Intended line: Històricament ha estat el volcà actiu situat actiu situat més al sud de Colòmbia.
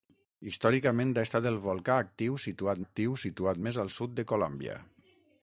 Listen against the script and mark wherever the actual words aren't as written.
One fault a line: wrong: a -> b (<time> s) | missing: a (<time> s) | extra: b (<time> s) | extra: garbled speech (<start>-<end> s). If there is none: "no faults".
no faults